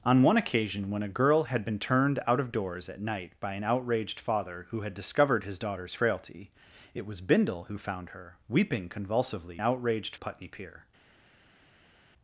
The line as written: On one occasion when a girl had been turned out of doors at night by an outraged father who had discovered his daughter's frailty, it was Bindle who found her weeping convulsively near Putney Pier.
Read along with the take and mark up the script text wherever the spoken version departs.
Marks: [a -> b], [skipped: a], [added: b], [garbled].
On one occasion when a girl had been turned out of doors at night by an outraged father who had discovered his daughter's frailty, it was Bindle who found her weeping convulsively [near -> outraged] Putney Pier.